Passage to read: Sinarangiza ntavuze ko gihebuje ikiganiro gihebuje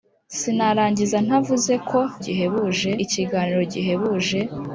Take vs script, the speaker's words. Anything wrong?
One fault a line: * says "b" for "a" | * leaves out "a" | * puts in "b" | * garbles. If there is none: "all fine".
all fine